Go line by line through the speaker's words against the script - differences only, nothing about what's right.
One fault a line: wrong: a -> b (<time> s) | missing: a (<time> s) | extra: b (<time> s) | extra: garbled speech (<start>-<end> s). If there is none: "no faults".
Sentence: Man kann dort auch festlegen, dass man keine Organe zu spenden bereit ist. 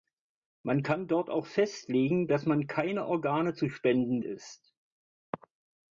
missing: bereit (4.2 s)